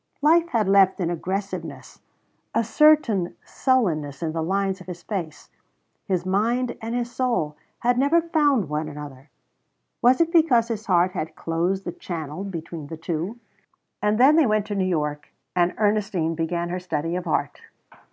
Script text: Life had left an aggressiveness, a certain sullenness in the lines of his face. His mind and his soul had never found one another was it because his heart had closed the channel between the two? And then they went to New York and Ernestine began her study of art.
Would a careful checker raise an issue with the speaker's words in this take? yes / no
no